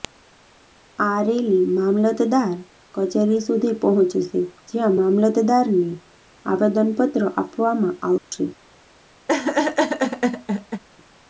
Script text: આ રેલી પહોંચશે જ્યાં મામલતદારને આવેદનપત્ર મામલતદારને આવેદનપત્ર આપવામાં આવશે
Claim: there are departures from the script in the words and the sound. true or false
true